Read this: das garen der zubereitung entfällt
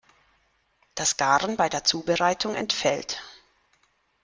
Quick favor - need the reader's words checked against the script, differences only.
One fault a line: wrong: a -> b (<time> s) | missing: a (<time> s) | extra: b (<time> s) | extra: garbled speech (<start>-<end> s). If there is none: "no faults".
extra: bei (1.6 s)